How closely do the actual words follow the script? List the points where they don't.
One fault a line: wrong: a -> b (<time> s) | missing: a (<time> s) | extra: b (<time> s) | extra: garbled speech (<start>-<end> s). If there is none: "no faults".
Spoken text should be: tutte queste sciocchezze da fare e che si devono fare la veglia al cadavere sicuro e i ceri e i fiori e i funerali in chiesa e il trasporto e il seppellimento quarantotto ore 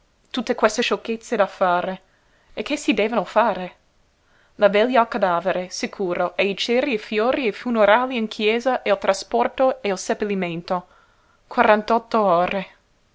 no faults